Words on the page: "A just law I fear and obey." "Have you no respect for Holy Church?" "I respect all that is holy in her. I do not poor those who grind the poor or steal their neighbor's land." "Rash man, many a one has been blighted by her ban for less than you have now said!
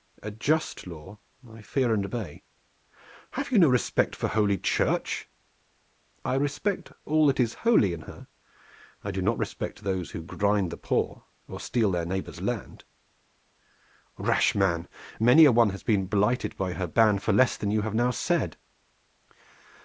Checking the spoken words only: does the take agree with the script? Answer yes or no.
no